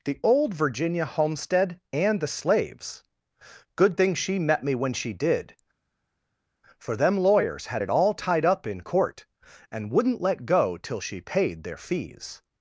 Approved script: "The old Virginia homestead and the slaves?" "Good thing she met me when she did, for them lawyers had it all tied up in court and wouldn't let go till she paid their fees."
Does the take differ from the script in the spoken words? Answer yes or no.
no